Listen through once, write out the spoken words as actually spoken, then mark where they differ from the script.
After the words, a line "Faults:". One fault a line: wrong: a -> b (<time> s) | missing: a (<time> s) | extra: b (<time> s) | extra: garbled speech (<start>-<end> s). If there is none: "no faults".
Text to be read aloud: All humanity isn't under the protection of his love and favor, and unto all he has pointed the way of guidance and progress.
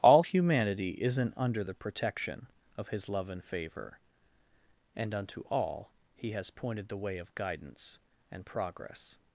All humanity isn't under the protection of his love and favor, and unto all he has pointed the way of guidance and progress.
Faults:
no faults